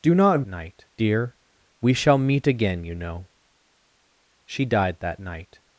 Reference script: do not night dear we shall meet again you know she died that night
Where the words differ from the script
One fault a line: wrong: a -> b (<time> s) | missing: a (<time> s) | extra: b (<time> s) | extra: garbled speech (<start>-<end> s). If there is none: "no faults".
no faults